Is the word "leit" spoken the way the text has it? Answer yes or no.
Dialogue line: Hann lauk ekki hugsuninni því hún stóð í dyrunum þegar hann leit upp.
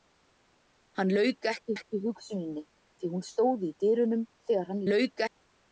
no